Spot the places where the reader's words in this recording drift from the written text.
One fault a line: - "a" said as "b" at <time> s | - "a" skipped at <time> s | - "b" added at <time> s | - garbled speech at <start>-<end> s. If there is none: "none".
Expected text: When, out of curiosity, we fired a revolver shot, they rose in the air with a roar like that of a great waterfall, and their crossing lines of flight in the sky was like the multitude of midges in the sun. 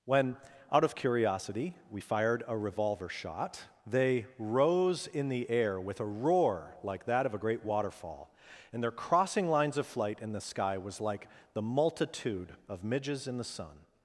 none